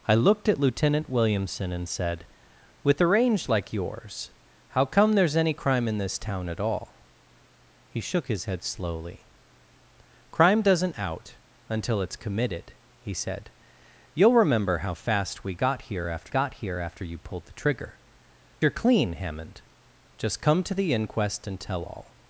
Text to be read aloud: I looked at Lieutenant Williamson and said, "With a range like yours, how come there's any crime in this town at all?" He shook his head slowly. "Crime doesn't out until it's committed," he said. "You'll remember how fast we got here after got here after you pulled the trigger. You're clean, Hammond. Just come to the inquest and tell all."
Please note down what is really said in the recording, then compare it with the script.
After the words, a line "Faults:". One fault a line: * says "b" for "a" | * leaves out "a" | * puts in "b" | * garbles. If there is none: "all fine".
I looked at Lieutenant Williamson and said, "With a range like yours, how come there's any crime in this town at all?" He shook his head slowly. "Crime doesn't out until it's committed," he said. "You'll remember how fast we got here after got here after you pulled the trigger. You're clean, Hammond. Just come to the inquest and tell all."
Faults:
all fine